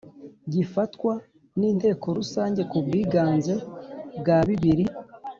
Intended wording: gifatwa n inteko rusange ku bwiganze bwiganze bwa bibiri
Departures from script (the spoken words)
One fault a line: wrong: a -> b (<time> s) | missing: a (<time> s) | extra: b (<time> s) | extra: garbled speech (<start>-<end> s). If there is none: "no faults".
missing: bwiganze (3.5 s)